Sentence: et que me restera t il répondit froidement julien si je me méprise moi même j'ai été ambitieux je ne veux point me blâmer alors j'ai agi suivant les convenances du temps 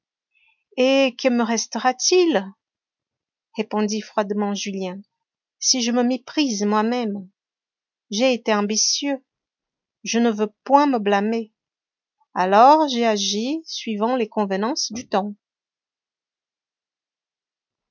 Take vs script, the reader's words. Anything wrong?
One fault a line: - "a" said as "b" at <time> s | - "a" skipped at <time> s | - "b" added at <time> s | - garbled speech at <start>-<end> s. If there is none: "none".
none